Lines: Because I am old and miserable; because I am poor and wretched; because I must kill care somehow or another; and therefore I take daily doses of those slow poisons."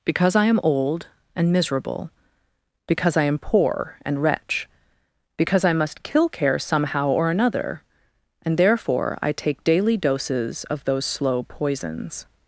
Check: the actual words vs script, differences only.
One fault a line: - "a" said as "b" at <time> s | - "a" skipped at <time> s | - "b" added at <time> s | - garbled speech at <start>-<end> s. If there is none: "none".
- "wretched" said as "wretch" at 4.2 s